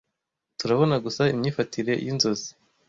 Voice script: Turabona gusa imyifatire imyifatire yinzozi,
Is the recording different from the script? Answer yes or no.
yes